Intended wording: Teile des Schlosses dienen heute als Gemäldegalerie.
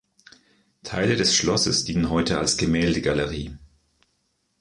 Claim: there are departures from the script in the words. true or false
false